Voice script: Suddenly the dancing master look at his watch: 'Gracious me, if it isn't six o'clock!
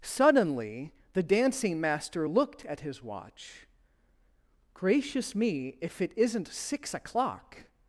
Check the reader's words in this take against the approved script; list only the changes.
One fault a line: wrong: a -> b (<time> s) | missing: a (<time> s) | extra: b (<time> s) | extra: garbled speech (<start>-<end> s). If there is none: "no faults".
wrong: look -> looked (2.3 s)